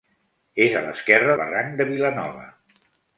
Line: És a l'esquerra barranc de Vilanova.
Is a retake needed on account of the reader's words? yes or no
no